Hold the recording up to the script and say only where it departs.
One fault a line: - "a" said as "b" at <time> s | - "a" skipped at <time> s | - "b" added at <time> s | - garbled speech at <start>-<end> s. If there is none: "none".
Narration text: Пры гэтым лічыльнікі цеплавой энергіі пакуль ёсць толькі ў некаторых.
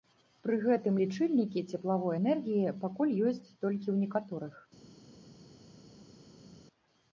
none